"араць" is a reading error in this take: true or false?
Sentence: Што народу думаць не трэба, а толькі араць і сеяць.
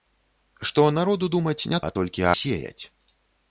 true